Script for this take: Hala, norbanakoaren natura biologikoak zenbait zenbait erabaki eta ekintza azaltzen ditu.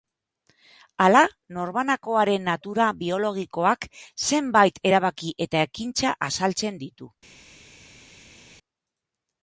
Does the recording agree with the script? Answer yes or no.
no